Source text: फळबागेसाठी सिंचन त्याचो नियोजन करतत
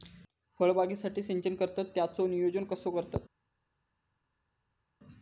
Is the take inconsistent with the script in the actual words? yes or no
yes